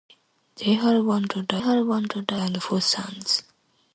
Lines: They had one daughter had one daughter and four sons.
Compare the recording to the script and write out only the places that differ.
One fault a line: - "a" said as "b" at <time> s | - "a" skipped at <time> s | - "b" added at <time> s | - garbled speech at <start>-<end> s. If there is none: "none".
none